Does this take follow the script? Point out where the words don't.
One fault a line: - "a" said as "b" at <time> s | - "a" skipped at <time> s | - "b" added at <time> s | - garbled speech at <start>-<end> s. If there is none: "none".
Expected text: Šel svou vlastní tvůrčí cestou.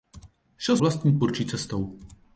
- "svou" skipped at 0.8 s